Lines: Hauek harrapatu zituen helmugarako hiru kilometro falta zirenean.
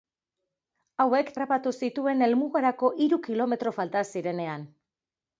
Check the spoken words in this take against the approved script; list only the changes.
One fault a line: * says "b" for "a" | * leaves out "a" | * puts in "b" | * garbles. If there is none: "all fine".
all fine